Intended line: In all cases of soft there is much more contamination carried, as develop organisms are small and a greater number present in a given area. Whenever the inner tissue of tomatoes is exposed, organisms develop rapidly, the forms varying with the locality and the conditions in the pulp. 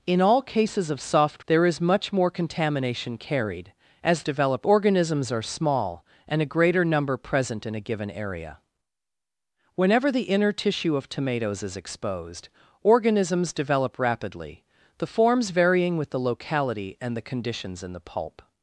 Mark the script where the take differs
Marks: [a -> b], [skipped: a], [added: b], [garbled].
In all cases of soft there is much more contamination carried, as develop organisms are small and a greater number present in a given area. Whenever the inner tissue of tomatoes is exposed, organisms develop rapidly, the forms varying with the locality and the conditions in the pulp.